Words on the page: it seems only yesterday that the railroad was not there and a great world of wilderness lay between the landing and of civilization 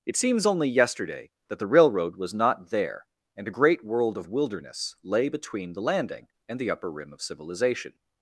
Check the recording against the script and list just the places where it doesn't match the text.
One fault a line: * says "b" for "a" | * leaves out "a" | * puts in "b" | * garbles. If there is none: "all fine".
* puts in "the upper rim"